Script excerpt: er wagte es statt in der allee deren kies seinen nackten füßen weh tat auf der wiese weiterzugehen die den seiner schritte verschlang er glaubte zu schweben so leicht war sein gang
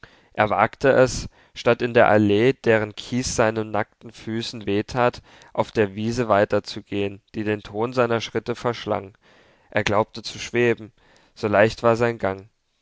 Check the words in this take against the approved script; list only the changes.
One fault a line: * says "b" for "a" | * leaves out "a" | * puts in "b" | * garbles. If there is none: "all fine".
* puts in "ton"